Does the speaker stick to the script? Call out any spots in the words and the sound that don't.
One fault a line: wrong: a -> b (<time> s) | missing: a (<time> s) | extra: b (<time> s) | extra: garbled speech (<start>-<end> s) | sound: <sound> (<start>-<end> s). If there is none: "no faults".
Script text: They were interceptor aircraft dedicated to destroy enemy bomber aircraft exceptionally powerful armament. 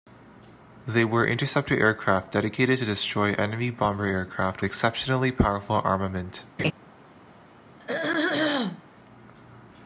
sound: laugh (6.6-6.7 s)
sound: throat clearing (7.8-8.8 s)